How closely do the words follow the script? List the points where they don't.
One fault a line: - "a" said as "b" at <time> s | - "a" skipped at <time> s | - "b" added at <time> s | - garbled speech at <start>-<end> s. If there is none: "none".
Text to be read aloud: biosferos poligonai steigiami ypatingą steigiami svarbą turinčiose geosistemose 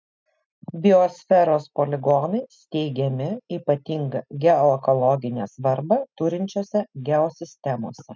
- "steigiami" said as "geoekologinę" at 4.4 s